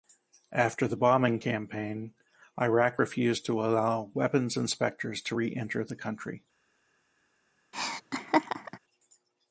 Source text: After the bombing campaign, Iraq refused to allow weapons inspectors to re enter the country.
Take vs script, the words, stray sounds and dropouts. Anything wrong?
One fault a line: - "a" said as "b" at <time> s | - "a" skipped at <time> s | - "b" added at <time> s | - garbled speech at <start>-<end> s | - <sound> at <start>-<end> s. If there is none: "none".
- laugh at 7.7-8.8 s